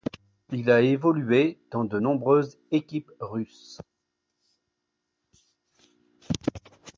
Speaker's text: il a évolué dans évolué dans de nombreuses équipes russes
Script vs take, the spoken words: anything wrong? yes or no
yes